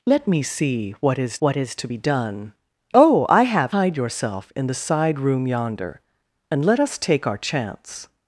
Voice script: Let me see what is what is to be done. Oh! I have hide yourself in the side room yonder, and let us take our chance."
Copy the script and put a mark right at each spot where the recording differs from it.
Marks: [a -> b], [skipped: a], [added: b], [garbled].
Let me see what is what is to be done. Oh! I have hide yourself in the side room yonder, and let us take our chance."